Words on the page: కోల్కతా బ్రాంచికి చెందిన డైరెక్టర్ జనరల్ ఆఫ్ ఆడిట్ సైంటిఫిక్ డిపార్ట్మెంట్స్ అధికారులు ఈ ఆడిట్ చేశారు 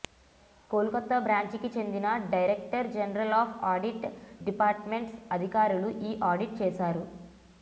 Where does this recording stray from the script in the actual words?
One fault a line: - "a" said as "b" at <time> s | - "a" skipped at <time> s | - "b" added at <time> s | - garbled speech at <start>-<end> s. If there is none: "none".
- "సైంటిఫిక్" skipped at 4.1 s